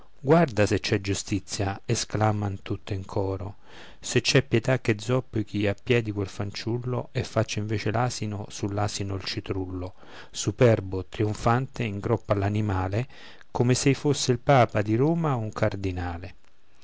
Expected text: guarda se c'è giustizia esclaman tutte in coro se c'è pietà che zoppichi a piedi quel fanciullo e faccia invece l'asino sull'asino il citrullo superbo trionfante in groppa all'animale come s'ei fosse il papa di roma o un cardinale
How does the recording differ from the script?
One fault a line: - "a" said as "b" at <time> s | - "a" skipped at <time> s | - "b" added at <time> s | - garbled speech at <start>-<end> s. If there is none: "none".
none